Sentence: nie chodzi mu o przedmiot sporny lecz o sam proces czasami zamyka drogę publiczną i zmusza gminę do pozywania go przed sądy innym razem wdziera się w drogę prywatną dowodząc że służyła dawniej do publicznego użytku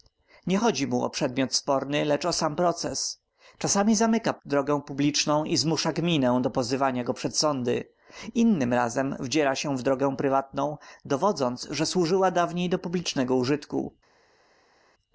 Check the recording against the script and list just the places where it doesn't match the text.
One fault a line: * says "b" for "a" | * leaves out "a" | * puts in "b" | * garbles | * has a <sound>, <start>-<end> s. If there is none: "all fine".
all fine